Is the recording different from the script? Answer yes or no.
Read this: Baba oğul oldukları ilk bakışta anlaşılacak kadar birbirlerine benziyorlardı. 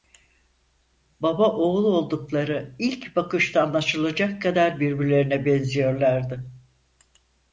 no